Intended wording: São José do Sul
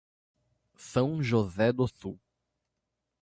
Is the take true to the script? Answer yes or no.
yes